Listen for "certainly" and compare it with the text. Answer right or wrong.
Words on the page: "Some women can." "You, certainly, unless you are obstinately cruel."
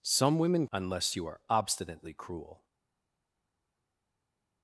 wrong